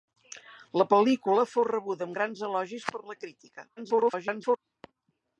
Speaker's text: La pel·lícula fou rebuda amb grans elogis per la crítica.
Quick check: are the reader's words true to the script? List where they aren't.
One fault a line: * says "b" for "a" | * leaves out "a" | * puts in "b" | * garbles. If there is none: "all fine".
* garbles